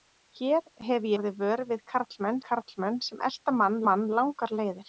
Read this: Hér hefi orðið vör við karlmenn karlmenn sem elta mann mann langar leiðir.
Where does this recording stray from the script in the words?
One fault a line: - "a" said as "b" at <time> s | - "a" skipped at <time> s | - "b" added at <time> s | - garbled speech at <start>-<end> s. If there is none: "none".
none